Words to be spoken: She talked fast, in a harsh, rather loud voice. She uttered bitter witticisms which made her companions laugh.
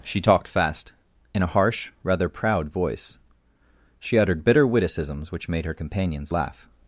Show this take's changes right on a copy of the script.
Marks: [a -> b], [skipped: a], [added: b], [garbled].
She talked fast, in a harsh, rather [loud -> proud] voice. She uttered bitter witticisms which made her companions laugh.